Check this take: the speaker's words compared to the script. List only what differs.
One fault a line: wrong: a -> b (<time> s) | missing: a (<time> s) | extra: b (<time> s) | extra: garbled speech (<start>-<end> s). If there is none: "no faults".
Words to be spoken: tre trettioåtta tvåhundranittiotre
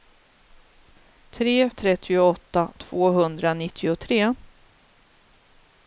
no faults